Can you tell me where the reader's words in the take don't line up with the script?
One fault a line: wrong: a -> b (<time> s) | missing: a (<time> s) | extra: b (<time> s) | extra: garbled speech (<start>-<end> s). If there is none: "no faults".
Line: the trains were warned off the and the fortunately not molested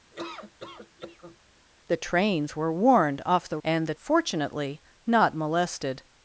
no faults